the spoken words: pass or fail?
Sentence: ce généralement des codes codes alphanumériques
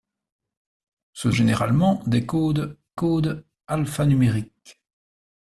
pass